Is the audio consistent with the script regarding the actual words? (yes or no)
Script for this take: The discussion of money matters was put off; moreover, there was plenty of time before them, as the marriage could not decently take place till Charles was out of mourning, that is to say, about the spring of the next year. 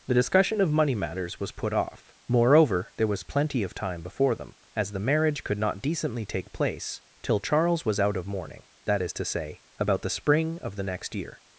yes